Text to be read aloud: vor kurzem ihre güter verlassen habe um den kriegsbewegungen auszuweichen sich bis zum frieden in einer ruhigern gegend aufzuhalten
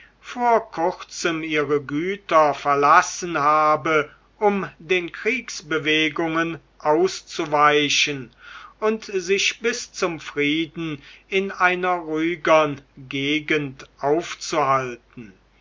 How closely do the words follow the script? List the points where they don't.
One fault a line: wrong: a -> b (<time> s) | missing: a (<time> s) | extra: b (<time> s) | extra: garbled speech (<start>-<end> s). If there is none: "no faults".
extra: und (8.8 s)